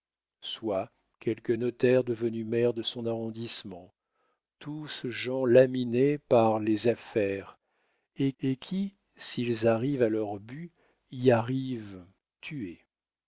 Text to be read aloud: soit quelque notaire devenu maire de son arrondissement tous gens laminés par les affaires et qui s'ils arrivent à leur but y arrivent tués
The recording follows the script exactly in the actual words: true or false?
false